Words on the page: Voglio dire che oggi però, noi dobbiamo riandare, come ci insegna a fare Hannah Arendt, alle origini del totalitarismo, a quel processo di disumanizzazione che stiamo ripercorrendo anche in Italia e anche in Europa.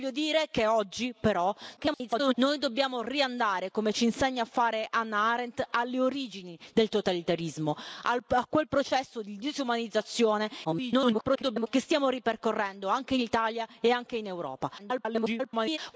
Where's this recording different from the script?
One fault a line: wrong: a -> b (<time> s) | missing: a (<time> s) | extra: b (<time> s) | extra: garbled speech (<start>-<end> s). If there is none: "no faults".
extra: garbled speech (1.8-2.3 s)
extra: garbled speech (10.6-11.7 s)
extra: garbled speech (14.8-15.8 s)